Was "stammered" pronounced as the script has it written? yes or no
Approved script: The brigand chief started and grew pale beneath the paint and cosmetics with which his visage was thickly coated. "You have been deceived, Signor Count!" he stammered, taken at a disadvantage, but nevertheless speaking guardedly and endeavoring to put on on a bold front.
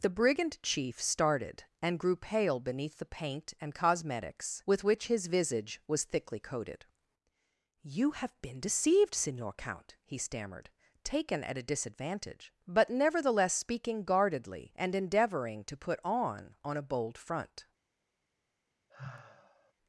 yes